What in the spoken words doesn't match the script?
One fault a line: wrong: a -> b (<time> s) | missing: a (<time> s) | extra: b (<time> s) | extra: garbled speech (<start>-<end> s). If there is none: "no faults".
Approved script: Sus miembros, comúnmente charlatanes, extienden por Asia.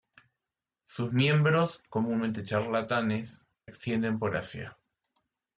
no faults